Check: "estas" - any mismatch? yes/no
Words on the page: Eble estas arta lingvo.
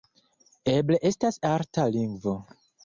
no